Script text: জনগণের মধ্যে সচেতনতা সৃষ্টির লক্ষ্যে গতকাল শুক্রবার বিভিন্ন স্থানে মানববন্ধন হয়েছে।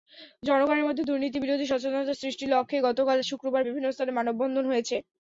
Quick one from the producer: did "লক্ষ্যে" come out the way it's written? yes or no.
yes